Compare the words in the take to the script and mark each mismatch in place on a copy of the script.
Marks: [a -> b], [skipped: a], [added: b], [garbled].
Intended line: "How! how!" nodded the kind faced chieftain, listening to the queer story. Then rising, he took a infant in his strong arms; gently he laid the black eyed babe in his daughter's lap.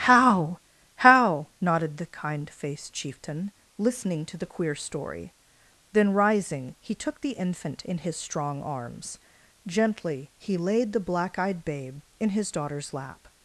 "How! how!" nodded the kind faced chieftain, listening to the queer story. Then rising, he took [a -> the] infant in his strong arms; gently he laid the black eyed babe in his daughter's lap.